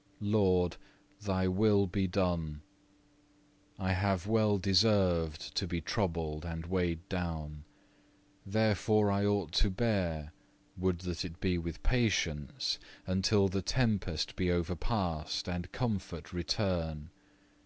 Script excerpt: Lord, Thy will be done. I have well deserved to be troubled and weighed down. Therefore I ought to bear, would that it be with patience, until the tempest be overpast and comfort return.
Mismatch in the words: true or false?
false